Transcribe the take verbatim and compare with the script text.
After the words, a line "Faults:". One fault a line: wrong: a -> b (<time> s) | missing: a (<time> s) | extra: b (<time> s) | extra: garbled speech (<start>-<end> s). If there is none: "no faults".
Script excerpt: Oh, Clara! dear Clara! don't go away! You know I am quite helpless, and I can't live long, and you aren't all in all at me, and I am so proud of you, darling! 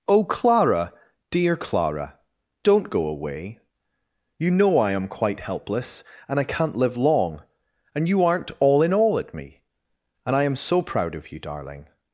Oh, Clara! dear Clara! don't go away! You know I am quite helpless, and I can't live long, and you aren't all in all at me, and I am so proud of you, darling!
Faults:
no faults